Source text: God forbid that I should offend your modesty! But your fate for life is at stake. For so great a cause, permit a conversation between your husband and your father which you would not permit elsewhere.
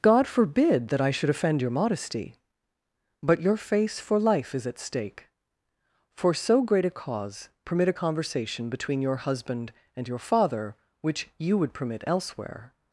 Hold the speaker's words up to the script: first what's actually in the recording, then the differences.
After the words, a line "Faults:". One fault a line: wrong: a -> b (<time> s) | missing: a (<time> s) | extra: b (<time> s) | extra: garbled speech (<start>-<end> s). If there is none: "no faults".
God forbid that I should offend your modesty! But your face for life is at stake. For so great a cause, permit a conversation between your husband and your father which you would permit elsewhere.
Faults:
wrong: fate -> face (3.5 s)
missing: not (11.7 s)